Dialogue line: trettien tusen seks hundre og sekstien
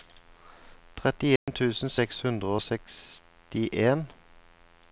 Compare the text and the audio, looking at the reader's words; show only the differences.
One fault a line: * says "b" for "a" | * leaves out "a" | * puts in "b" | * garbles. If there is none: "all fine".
all fine